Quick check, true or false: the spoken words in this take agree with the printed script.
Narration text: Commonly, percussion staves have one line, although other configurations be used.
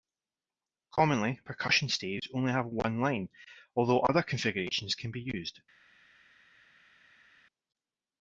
false